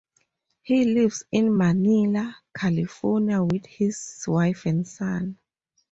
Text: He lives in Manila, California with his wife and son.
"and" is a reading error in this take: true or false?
false